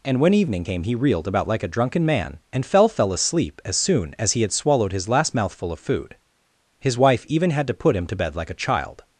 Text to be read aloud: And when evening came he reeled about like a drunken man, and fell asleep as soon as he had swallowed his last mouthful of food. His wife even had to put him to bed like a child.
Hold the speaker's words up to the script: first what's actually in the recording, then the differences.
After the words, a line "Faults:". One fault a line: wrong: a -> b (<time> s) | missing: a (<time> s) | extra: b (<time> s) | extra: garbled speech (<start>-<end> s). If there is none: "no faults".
And when evening came he reeled about like a drunken man, and fell fell asleep as soon as he had swallowed his last mouthful of food. His wife even had to put him to bed like a child.
Faults:
extra: fell (2.9 s)